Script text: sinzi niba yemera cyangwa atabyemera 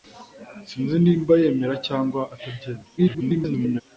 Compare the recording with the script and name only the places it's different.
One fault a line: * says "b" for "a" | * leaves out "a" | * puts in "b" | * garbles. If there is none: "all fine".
* garbles